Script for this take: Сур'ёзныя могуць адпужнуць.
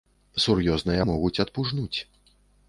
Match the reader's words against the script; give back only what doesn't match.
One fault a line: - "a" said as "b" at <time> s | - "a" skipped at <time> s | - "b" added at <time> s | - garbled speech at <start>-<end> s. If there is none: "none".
none